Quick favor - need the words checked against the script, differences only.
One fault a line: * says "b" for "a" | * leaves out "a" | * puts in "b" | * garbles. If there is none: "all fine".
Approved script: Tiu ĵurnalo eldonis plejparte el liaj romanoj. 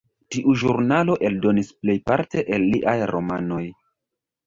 all fine